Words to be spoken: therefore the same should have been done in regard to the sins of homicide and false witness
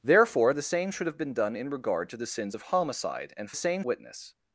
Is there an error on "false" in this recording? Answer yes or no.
yes